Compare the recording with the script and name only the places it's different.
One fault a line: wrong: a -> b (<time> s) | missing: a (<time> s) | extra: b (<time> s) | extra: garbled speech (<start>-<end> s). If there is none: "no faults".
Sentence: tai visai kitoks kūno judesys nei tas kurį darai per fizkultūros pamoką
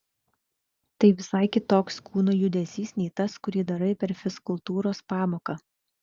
no faults